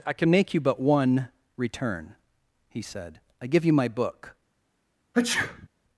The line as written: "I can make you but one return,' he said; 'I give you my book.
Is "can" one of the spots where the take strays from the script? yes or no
no